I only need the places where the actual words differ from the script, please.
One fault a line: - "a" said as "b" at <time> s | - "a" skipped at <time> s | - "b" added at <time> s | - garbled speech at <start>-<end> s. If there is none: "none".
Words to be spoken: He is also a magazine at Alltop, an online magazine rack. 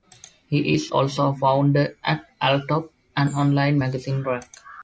- "magazine" said as "founder" at 1.3 s